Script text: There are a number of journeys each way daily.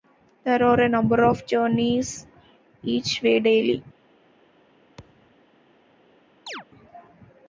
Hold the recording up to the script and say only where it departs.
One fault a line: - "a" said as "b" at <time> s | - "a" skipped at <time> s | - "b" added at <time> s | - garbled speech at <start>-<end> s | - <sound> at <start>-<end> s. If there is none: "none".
- thud at 5.0-5.4 s
- chirp at 6.5-6.7 s